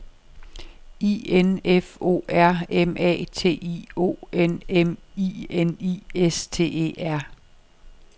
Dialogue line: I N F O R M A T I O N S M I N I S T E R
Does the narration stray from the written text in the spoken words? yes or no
yes